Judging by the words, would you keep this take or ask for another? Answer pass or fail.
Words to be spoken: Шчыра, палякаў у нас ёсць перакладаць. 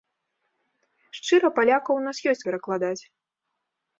pass